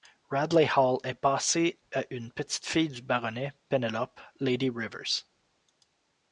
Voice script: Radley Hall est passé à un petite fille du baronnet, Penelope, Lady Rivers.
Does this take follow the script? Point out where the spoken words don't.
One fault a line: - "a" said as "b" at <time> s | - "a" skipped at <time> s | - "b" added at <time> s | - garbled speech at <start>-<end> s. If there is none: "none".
- "un" said as "une" at 2.1 s